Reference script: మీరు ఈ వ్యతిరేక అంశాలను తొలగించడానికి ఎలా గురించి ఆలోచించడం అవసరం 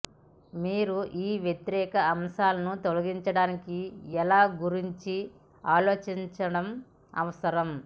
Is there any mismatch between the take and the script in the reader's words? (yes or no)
no